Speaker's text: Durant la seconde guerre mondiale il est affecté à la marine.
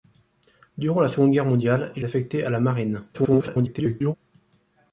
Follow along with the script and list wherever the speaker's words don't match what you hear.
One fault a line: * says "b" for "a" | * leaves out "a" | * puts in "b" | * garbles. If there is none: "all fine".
* leaves out "est"
* garbles